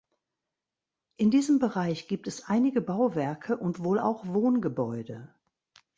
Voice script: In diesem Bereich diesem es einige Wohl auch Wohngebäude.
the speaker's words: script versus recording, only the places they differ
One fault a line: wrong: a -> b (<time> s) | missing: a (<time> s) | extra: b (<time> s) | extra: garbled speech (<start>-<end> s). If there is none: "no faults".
wrong: diesem -> gibt (2.1 s)
extra: Bauwerke und (2.8 s)